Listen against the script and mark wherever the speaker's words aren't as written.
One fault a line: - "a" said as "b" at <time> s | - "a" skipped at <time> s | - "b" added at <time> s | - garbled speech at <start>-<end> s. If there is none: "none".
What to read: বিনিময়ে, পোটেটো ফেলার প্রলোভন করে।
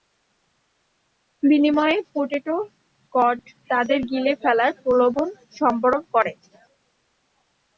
- "কড তাদের গিলে" added at 3.1 s
- "সম্বরণ" added at 5.6 s